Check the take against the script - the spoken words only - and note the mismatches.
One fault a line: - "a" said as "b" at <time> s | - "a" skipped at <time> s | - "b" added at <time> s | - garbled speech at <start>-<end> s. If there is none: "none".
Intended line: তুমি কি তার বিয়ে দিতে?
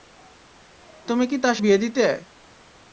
none